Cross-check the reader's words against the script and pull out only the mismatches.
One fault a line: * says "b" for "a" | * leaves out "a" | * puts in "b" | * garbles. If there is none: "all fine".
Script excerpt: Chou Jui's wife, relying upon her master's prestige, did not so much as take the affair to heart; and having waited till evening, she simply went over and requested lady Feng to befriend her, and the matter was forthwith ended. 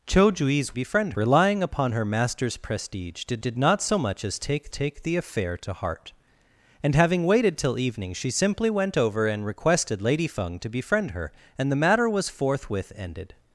* says "befriend" for "wife"
* puts in "did"
* puts in "take"